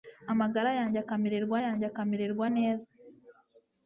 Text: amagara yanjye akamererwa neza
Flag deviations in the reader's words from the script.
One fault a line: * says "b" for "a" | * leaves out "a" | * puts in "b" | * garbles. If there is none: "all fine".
* puts in "yanjye akamererwa"